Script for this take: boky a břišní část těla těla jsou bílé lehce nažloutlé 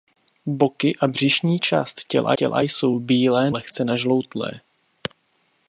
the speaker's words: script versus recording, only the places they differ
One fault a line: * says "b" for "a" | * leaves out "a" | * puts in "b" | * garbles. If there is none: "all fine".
all fine